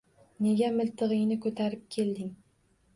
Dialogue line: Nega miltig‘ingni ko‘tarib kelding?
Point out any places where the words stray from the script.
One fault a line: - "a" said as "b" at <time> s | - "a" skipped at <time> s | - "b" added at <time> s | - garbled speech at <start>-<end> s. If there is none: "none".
none